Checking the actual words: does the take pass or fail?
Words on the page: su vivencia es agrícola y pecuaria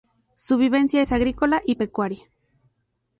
pass